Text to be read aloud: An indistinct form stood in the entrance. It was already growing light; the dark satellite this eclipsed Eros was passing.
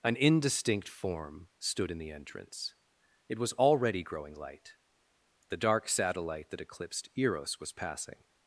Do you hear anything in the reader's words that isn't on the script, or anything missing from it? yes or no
yes